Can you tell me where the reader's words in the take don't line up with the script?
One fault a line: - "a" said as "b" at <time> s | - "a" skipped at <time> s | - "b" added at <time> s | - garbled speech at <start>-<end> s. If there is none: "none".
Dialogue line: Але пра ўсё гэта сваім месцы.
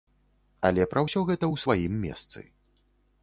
- "ў" added at 1.5 s